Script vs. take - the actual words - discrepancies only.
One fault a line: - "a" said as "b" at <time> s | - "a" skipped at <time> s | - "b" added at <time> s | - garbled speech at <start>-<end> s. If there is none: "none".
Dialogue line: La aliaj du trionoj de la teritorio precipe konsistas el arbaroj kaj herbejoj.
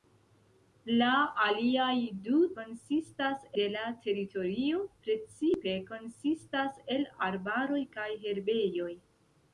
- "trionoj" said as "konsistas" at 2.6 s